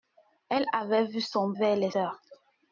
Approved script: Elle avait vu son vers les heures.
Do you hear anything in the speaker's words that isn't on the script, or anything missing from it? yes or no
no